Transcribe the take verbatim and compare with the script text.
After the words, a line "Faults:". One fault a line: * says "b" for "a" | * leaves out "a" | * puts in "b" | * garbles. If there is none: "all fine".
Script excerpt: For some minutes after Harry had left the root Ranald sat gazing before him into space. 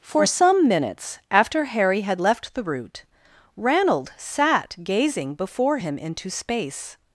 For some minutes after Harry had left the root Ranald sat gazing before him into space.
Faults:
all fine